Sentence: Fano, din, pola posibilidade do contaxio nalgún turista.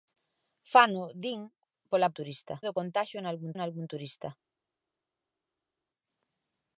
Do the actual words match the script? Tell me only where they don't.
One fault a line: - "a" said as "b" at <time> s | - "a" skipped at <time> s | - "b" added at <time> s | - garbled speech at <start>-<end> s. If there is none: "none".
- "posibilidade" said as "turista" at 2.2 s
- "nalgún" added at 3.5 s